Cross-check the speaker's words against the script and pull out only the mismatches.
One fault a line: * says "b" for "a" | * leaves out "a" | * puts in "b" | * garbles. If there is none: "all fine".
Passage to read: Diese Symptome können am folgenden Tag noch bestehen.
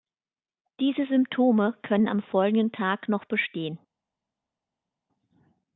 all fine